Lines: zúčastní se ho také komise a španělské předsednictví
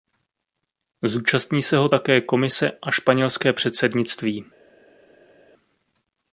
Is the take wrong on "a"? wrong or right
right